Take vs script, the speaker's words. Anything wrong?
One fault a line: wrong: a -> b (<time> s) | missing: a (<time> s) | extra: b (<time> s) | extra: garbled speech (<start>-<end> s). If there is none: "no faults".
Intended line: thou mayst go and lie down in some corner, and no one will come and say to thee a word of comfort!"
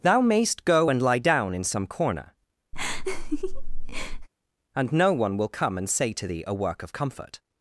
wrong: word -> work (6.5 s)